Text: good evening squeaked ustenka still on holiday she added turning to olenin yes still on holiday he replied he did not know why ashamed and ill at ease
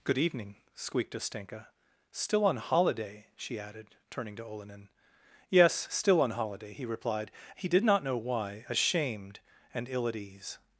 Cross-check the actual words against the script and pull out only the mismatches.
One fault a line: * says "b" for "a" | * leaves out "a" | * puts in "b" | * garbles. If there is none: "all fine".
all fine